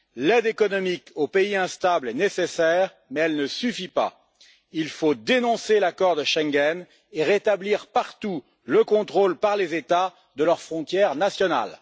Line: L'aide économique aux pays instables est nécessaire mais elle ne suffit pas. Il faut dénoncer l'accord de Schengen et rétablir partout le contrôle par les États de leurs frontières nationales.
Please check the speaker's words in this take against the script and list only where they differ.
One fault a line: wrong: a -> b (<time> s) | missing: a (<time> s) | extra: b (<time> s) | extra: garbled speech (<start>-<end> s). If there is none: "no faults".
no faults